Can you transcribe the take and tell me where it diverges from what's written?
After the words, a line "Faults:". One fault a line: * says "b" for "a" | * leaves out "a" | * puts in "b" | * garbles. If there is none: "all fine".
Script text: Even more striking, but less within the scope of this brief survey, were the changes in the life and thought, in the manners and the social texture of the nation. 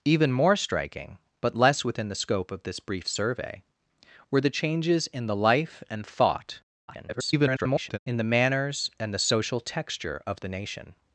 Even more striking, but less within the scope of this brief survey, were the changes in the life and thought, [garbled] in the manners and the social texture of the nation.
Faults:
* garbles